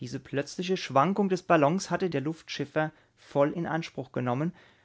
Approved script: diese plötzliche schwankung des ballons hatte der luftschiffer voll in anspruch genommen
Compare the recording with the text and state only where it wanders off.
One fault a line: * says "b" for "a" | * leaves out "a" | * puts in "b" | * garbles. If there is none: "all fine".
all fine